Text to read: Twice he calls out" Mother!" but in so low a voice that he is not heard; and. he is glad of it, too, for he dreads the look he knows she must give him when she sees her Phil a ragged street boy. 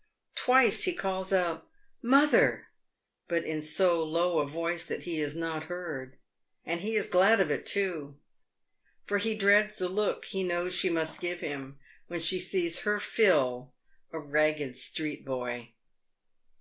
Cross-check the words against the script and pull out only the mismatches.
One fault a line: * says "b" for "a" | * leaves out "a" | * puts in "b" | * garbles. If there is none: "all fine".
all fine